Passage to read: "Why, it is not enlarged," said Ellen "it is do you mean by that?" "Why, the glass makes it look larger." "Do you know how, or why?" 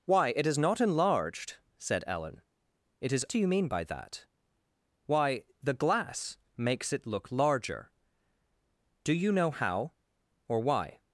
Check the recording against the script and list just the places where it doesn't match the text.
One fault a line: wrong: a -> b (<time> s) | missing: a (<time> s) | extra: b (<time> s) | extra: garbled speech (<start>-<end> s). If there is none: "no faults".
no faults